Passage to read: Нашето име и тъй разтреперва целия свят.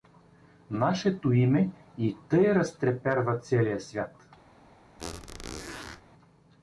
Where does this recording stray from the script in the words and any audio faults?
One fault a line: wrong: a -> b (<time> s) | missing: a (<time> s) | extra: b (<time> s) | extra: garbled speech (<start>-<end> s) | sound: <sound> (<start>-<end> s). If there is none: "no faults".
sound: squeak (5.0-6.0 s)